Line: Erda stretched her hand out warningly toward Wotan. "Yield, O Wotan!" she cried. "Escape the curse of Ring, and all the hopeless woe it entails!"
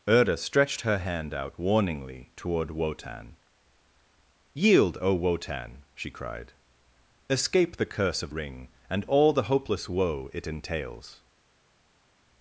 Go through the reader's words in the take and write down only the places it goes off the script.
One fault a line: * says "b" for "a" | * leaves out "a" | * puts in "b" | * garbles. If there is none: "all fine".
all fine